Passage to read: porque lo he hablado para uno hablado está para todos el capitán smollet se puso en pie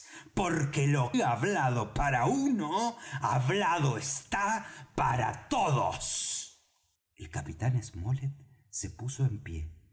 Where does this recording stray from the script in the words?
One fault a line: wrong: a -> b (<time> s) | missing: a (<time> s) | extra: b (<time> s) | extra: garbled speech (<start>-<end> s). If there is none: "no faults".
no faults